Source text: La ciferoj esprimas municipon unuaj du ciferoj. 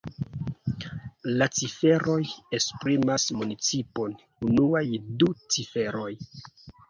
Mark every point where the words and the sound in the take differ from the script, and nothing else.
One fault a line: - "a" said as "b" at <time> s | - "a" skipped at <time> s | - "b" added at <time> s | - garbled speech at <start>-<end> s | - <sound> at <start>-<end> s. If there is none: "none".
none